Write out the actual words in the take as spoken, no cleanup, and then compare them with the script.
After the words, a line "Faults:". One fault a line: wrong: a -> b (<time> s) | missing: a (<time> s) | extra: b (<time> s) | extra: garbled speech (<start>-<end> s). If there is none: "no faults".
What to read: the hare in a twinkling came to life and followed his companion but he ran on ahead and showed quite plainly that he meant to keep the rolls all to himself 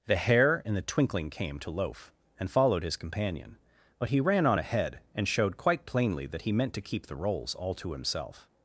the hare in the twinkling came to loaf and followed his companion but he ran on ahead and showed quite plainly that he meant to keep the rolls all to himself
Faults:
wrong: a -> the (0.7 s)
wrong: life -> loaf (1.7 s)